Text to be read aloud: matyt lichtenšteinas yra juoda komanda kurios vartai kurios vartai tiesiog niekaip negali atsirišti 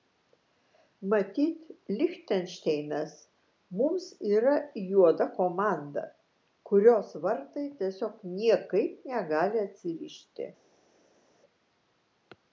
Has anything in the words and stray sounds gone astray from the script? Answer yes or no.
yes